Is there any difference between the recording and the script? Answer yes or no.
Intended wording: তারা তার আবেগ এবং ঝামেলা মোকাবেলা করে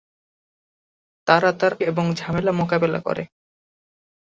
yes